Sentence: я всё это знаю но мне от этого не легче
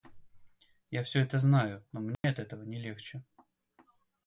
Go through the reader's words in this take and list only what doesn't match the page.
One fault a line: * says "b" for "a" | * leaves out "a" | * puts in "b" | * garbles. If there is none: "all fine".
all fine